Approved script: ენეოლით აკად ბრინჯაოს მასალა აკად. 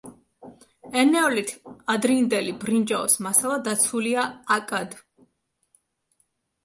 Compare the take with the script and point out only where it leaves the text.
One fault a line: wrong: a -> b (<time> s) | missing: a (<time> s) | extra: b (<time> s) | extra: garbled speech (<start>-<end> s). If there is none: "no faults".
wrong: აკად -> ადრინდელი (1.9 s)
extra: დაცულია (3.7 s)